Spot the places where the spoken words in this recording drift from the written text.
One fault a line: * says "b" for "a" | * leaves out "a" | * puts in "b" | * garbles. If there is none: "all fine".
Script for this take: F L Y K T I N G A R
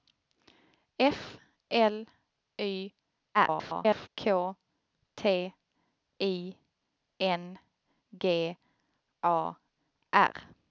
* garbles